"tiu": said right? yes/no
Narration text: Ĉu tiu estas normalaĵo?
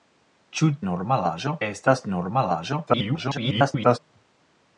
no